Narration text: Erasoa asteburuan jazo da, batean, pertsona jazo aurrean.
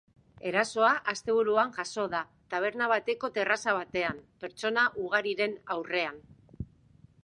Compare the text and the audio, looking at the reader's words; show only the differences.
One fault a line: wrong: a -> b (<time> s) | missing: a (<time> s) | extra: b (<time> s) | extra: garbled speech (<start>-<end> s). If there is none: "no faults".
extra: taberna bateko terraza (2.6 s)
wrong: jazo -> ugariren (5.1 s)